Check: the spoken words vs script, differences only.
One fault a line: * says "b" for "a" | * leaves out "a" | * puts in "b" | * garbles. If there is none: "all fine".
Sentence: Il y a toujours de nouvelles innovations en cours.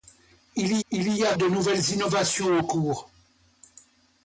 * puts in "il"
* leaves out "toujours"